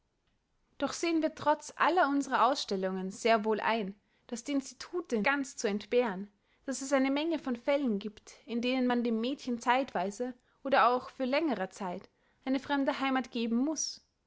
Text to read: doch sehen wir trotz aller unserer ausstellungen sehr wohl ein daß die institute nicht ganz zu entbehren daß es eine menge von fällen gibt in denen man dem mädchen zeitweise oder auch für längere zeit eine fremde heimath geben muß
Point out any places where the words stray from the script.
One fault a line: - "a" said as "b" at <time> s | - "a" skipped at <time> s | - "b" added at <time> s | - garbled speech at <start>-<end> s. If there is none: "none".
- "nicht" skipped at 5.2 s